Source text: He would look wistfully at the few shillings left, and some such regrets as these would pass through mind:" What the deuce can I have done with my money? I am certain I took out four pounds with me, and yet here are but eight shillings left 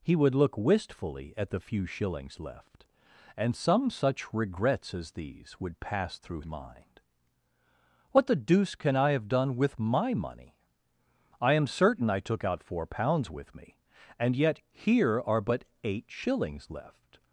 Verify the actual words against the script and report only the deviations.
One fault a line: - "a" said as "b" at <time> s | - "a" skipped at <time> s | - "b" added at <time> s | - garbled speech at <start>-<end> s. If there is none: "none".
none